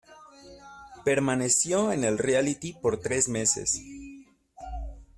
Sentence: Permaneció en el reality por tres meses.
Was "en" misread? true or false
false